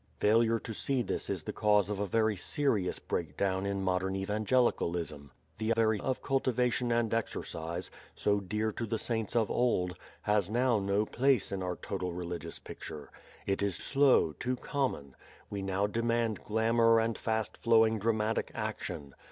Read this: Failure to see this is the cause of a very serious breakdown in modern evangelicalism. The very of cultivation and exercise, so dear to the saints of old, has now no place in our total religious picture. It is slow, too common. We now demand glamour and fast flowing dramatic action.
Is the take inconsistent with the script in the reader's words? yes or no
no